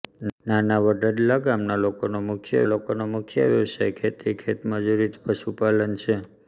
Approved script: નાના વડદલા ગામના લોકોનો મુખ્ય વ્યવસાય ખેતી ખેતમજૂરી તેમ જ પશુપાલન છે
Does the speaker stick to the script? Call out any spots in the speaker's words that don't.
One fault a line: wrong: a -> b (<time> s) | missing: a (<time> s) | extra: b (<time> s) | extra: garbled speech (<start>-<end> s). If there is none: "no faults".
extra: લોકોનો મુખ્ય (2.7 s)
missing: તેમ (5.1 s)